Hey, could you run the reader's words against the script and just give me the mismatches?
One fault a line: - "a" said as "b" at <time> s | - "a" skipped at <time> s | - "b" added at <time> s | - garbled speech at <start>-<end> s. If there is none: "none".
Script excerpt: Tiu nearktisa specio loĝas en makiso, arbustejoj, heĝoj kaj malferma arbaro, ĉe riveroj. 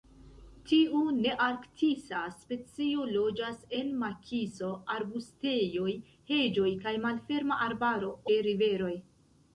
none